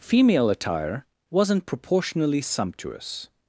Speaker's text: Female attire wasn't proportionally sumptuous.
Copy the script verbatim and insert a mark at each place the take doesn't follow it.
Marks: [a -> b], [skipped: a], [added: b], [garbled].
Female attire wasn't proportionally sumptuous.